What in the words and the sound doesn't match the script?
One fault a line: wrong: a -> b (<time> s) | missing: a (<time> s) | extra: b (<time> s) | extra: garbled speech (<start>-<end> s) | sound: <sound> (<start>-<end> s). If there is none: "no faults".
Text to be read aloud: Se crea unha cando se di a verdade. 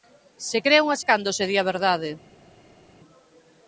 no faults